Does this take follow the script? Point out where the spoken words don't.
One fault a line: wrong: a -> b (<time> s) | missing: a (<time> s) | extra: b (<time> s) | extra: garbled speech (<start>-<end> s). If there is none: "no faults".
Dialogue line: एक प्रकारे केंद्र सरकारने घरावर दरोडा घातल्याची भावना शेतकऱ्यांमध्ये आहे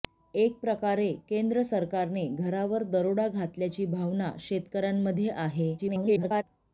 extra: garbled speech (5.8-6.4 s)